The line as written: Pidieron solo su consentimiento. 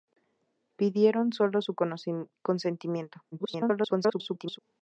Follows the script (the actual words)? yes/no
no